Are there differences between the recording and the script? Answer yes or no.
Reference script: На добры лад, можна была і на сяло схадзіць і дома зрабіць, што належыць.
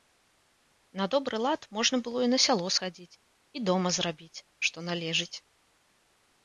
yes